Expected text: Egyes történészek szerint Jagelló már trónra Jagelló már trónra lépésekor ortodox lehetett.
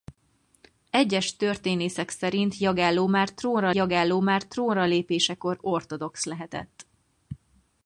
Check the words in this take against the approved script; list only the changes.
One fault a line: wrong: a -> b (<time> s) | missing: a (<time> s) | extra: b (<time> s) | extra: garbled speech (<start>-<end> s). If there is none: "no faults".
no faults